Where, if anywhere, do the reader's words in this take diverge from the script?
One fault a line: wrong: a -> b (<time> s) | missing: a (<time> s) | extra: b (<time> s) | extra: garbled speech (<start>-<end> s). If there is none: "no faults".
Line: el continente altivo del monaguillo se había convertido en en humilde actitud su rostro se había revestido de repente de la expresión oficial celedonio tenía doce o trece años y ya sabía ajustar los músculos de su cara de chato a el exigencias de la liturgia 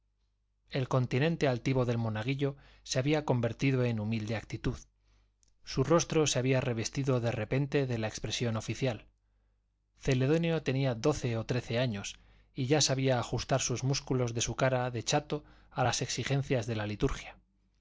missing: en (4.0 s)
wrong: el -> las (15.8 s)